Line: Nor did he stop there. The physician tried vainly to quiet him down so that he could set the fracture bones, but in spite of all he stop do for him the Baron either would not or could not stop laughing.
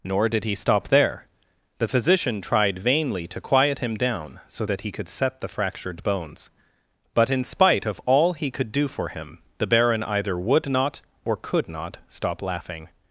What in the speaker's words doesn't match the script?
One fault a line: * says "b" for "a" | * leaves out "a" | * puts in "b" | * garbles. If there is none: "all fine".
* says "fractured" for "fracture"
* says "could" for "stop"